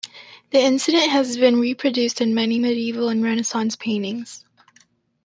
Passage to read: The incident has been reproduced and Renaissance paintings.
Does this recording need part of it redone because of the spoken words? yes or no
yes